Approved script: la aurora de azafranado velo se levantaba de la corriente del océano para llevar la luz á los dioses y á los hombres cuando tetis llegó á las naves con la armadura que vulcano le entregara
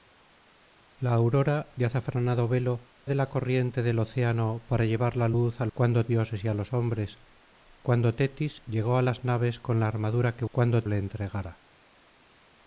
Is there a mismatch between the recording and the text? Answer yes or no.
yes